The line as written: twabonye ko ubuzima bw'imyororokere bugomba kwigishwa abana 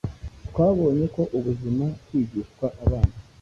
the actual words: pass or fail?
fail